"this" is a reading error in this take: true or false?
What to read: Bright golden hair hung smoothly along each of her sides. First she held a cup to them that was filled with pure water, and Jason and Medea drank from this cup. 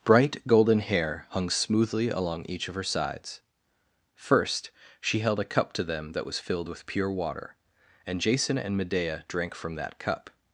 true